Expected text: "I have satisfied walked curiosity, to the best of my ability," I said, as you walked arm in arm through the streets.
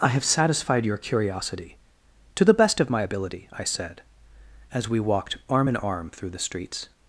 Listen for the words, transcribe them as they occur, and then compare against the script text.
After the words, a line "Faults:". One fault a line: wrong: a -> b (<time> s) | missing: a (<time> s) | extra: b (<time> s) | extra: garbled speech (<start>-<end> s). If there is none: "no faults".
"I have satisfied your curiosity, to the best of my ability," I said, as we walked arm in arm through the streets.
Faults:
wrong: walked -> your (0.8 s)
wrong: you -> we (4.9 s)